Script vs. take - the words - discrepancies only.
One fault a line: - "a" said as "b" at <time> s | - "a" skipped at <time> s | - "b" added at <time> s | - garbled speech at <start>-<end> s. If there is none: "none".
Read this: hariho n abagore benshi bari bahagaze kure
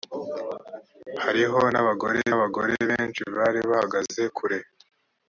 - "abagore" added at 2.3 s